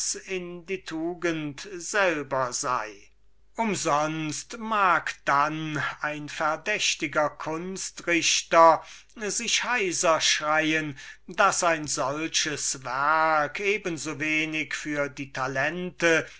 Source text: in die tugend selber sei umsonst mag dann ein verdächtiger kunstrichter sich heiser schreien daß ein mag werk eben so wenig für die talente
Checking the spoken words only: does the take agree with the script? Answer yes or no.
no